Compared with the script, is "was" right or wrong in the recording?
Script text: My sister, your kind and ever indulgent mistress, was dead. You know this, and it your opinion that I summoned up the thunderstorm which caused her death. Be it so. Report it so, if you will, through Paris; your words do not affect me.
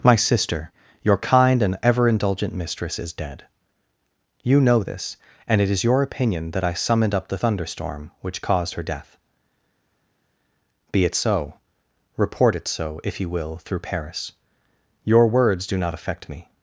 wrong